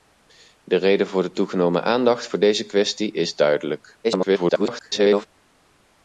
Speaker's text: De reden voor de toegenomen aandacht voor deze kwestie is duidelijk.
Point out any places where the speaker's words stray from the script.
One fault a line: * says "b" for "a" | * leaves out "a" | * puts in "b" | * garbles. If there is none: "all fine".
* garbles